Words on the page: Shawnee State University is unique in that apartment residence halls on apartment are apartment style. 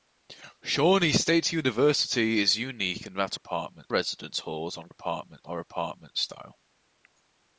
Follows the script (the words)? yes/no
yes